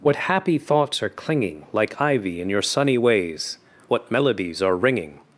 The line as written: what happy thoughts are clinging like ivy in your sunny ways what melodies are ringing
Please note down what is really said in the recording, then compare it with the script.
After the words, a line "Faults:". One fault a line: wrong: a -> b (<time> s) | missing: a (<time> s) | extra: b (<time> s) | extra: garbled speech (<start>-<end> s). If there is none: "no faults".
what happy thoughts are clinging like ivy in your sunny ways what melodies are ringing
Faults:
no faults